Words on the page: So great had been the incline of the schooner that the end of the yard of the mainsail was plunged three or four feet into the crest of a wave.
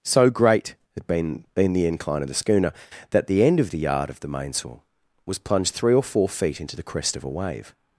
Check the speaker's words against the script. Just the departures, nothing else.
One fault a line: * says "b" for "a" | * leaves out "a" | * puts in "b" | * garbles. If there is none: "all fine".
* puts in "been"